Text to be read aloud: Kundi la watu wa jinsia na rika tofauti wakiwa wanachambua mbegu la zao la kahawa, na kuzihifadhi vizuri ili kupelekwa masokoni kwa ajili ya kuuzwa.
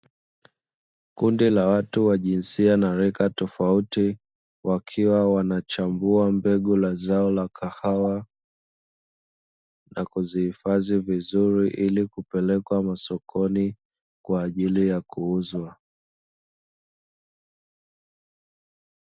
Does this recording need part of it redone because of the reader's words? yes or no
no